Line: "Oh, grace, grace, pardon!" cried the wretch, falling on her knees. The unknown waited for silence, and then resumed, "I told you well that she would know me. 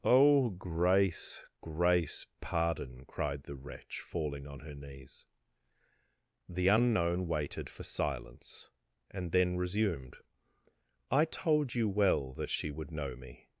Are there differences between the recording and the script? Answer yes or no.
no